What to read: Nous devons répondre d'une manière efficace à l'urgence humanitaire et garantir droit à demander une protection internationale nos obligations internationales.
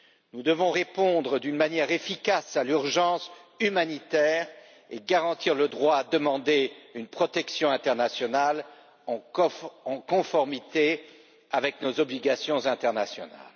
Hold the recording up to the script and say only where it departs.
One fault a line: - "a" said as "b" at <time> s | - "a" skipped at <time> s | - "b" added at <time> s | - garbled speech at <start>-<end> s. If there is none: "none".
- "le" added at 5.6 s
- "en conformité avec" added at 9.1 s